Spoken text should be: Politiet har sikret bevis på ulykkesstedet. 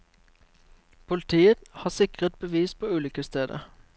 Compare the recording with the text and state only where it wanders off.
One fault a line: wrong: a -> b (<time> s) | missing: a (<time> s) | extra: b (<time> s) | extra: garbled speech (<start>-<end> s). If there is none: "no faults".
no faults